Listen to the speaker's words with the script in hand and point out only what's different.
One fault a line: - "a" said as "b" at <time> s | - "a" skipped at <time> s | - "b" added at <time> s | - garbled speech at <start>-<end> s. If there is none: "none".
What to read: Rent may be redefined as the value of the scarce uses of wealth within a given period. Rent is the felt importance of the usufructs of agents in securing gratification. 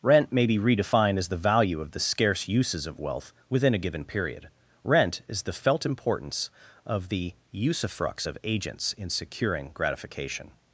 none